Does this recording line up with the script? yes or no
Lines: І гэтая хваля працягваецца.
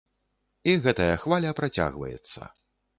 yes